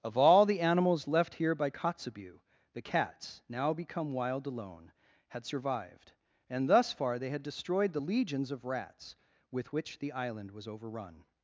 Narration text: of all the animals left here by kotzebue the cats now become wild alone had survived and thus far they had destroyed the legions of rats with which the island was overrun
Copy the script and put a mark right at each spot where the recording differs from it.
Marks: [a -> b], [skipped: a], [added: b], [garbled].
of all the animals left here by kotzebue the cats now become wild alone had survived and thus far they had destroyed the legions of rats with which the island was overrun